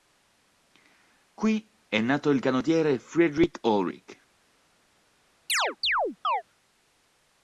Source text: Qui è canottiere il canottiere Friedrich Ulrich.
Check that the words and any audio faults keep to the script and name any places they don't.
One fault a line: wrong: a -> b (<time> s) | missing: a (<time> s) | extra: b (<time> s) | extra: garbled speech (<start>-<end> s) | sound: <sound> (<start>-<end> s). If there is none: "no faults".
wrong: canottiere -> nato (2.0 s)
sound: chirp (5.5-6.4 s)